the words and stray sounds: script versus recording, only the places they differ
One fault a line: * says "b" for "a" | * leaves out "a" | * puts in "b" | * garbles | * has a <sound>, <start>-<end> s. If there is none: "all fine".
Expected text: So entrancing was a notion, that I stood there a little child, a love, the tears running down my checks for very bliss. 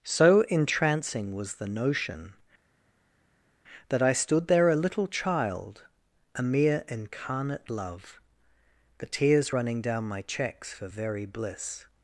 * says "the" for "a"
* puts in "mere incarnate"